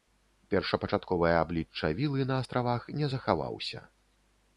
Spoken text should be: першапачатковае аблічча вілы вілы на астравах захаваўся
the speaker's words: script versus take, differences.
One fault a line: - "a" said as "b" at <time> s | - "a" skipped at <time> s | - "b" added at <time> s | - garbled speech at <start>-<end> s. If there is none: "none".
- "вілы" skipped at 2.2 s
- "не" added at 3.0 s